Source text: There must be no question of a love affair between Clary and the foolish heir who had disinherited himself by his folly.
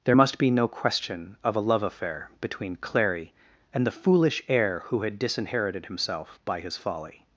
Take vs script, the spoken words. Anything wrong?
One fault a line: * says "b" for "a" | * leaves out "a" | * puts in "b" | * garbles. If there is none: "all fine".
all fine